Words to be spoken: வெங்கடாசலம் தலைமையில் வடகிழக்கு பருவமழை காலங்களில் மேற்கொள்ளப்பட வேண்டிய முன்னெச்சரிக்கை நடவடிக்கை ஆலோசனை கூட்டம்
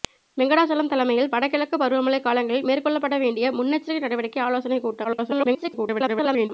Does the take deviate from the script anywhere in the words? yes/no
yes